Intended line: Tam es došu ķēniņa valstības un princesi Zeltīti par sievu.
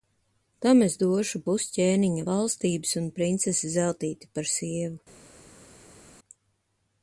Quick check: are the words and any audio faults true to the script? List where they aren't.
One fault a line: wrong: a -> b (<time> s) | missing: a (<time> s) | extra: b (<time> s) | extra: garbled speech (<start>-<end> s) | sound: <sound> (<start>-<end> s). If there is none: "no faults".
extra: pus (1.5 s)